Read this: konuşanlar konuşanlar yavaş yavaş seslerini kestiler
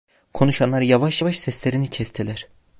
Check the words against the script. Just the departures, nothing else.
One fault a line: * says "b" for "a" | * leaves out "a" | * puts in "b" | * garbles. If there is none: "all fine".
* leaves out "konuşanlar"